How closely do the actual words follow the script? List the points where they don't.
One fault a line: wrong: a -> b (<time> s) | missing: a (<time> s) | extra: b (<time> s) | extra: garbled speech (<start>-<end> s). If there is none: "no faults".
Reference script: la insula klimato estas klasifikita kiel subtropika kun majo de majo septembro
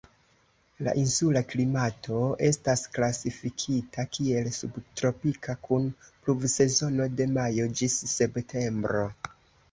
wrong: majo -> pluvsezono (6.2 s)
extra: ĝis (7.8 s)